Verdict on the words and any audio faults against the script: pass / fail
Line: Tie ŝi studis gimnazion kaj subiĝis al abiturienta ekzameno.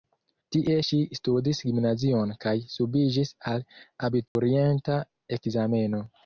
fail